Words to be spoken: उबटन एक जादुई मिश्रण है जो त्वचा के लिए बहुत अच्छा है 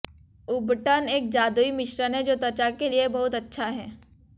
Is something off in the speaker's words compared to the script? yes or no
no